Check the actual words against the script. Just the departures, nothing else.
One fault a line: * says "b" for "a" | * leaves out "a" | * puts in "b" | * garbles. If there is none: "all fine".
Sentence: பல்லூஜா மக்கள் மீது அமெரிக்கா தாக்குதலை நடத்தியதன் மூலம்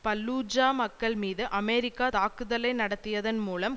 all fine